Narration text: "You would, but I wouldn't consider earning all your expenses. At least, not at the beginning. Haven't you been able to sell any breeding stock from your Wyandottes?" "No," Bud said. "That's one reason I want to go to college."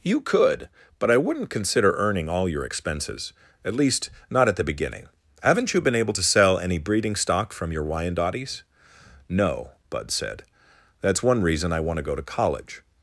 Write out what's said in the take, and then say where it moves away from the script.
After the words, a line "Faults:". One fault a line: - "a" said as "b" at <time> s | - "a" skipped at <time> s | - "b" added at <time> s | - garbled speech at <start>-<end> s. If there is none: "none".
"You could, but I wouldn't consider earning all your expenses. At least, not at the beginning. Haven't you been able to sell any breeding stock from your Wyandottes?" "No," Bud said. "That's one reason I want to go to college."
Faults:
- "would" said as "could" at 0.2 s